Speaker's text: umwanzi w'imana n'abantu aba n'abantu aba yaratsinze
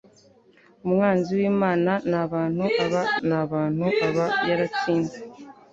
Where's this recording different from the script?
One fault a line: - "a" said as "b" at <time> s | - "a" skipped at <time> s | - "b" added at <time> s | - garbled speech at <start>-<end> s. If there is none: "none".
none